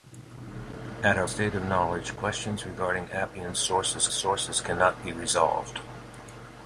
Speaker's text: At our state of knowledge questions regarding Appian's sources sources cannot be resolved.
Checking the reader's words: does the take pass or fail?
pass